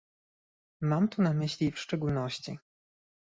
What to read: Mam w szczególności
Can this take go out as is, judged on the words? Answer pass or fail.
fail